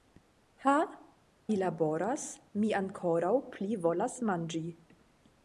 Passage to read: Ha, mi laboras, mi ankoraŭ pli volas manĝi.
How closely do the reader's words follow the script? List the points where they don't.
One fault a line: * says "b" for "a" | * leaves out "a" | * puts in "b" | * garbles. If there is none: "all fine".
all fine